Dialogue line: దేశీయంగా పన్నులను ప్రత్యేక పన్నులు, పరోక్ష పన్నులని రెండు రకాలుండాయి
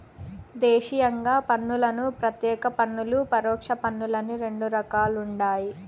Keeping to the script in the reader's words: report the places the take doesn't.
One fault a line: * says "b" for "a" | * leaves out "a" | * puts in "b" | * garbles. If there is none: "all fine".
all fine